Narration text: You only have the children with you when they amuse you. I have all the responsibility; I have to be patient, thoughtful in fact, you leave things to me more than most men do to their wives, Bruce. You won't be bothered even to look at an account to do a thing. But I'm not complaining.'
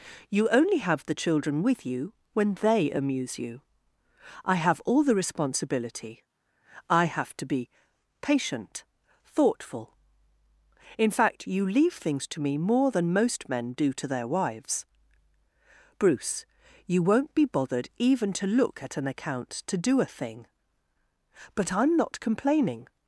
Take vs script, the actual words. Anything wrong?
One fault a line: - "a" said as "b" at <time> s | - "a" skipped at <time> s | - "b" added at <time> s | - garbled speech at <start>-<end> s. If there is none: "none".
none